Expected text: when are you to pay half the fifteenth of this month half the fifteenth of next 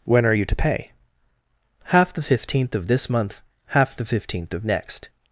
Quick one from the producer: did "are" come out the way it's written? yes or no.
yes